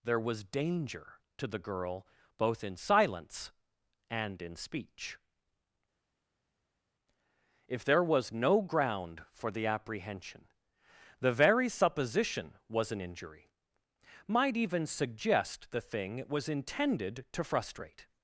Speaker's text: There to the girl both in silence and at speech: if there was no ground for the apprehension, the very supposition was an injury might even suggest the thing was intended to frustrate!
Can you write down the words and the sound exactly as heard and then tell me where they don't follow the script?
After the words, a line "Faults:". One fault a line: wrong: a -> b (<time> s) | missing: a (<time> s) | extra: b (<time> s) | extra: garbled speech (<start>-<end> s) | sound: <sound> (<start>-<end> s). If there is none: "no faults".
There was danger to the girl both in silence and in speech: if there was no ground for the apprehension, the very supposition was an injury might even suggest the thing it was intended to frustrate!
Faults:
extra: was danger (0.2 s)
wrong: at -> in (4.4 s)
extra: it (16.2 s)